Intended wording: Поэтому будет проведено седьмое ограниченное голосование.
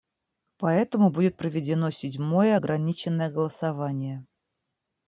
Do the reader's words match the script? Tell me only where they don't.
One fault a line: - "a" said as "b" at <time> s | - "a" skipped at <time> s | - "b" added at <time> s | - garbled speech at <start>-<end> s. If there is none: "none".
none